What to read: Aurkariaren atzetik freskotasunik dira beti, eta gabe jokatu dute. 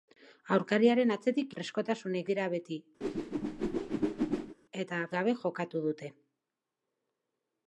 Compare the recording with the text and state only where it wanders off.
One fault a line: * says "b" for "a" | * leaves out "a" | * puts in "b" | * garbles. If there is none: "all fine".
all fine